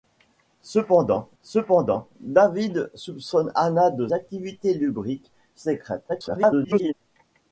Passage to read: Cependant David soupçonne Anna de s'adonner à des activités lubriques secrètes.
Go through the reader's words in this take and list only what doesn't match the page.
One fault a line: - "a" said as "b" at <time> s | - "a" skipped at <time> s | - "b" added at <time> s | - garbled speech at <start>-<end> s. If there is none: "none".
- "cependant" added at 1.4 s
- "s'adonner à des" skipped at 4.1 s
- garbled speech at 6.1-6.9 s